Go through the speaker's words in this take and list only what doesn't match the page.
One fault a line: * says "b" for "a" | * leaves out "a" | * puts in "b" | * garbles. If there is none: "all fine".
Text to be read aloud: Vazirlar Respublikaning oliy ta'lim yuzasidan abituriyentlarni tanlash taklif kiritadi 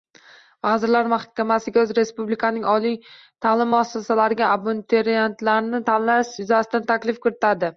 * puts in "Mahkamasiga"
* says "muassasalariga" for "yuzasidan"
* puts in "yuzasidan"